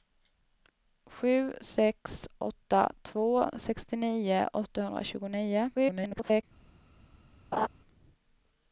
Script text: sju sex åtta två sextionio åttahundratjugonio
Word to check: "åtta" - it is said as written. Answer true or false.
true